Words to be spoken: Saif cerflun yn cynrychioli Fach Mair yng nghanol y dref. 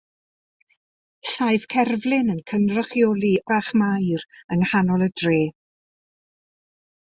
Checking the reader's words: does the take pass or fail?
pass